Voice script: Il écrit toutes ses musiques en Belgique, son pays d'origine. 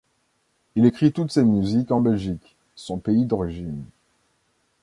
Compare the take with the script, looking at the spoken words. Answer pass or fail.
pass